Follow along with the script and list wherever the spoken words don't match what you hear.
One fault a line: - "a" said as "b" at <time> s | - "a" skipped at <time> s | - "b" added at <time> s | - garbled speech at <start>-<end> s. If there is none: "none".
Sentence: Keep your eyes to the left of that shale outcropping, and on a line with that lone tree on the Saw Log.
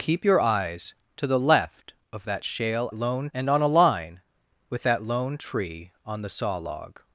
- "outcropping" said as "lone" at 2.9 s